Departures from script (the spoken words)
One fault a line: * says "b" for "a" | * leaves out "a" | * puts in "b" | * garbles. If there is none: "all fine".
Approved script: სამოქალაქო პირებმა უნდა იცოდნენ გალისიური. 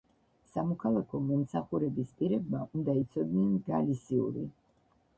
* puts in "მომსახურების"